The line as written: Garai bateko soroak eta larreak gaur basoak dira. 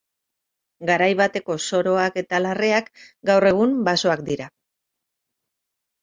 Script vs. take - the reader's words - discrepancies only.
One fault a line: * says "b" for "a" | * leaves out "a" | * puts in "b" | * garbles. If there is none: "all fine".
* puts in "egun"